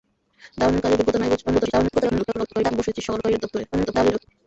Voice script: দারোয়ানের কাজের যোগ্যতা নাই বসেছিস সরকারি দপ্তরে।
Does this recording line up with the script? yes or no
no